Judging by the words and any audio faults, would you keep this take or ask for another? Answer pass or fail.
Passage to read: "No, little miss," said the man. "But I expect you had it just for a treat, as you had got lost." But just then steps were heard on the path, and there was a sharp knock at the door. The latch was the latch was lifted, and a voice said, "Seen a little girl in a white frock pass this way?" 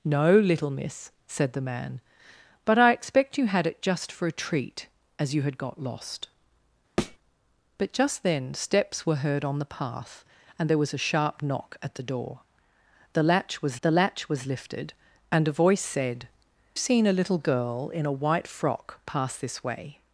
fail